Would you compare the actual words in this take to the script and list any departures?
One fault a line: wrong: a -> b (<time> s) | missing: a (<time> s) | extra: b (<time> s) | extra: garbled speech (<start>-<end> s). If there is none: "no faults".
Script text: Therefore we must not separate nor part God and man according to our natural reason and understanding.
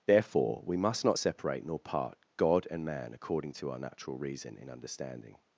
wrong: and -> in (4.6 s)